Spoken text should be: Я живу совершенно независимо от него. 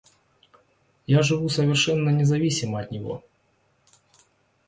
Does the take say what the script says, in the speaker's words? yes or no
yes